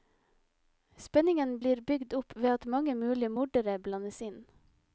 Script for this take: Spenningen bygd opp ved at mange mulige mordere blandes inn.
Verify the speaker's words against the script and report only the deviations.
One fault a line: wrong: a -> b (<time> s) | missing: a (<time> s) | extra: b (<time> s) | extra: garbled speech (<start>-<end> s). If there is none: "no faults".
extra: blir (1.6 s)